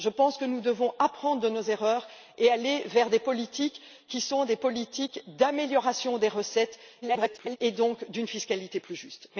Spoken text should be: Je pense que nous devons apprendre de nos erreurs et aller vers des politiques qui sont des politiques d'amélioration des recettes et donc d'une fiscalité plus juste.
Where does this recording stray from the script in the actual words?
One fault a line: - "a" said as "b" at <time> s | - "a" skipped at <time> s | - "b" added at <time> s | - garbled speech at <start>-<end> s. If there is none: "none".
- garbled speech at 7.0-7.6 s